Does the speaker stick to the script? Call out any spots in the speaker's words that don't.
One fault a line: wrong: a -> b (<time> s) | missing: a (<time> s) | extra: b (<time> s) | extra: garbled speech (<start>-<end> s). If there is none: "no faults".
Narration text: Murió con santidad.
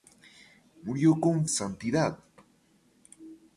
no faults